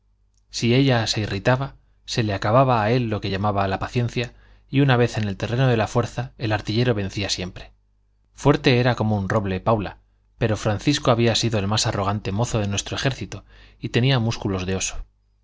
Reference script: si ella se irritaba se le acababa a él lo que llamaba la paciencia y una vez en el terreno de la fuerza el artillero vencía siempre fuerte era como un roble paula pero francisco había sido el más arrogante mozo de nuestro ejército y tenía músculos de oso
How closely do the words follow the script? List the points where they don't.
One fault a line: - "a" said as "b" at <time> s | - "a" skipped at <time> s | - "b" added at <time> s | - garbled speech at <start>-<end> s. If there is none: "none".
none